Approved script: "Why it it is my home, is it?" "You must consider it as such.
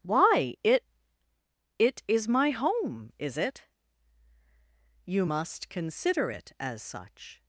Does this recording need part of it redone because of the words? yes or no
no